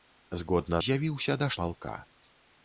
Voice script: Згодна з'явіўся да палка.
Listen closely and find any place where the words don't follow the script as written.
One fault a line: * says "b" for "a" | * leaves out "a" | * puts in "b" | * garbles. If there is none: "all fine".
all fine